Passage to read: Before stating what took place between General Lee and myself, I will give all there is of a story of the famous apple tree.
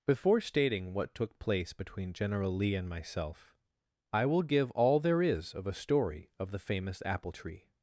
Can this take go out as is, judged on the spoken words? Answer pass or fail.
pass